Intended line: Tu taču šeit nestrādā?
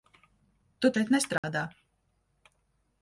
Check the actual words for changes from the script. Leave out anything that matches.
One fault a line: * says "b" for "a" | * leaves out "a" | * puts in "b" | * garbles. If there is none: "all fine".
* leaves out "taču"